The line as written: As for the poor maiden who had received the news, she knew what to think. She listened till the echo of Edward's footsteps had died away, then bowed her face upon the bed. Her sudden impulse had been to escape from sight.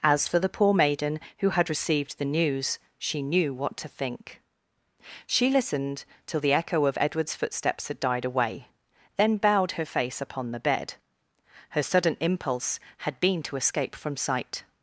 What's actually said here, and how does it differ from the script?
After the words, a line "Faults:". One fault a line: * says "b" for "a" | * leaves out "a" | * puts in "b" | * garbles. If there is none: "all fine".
As for the poor maiden who had received the news, she knew what to think. She listened till the echo of Edward's footsteps had died away, then bowed her face upon the bed. Her sudden impulse had been to escape from sight.
Faults:
all fine